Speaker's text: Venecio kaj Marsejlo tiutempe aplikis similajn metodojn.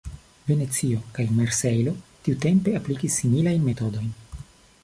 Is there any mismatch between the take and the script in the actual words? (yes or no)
no